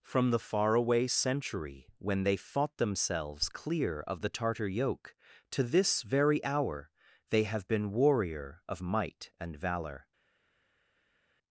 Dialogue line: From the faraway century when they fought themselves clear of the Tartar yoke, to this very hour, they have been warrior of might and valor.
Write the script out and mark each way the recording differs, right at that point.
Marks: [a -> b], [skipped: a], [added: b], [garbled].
From the faraway century when they fought themselves clear of the Tartar yoke, to this very hour, they have been warrior of might and valor.